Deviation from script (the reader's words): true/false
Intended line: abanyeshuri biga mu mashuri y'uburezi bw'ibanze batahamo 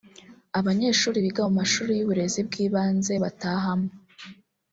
false